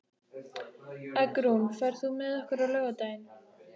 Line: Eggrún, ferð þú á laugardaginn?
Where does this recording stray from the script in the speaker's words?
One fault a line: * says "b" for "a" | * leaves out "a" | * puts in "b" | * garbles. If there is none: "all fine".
* puts in "með okkur"